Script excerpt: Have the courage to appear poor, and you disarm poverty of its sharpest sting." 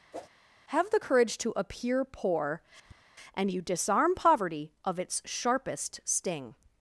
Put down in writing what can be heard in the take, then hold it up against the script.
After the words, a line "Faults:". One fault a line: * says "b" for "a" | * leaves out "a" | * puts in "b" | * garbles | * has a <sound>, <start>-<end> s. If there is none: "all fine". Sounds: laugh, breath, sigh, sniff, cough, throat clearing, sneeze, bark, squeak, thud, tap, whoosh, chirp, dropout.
Have the courage to appear poor, and you disarm poverty of its sharpest sting."
Faults:
* has a whoosh, 0.1-0.3 s
* has a tap, 2.8-3.0 s